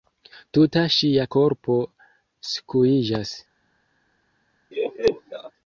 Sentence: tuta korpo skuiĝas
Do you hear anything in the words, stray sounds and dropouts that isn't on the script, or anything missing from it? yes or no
yes